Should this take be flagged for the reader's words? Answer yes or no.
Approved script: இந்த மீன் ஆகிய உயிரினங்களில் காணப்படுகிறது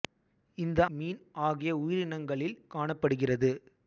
no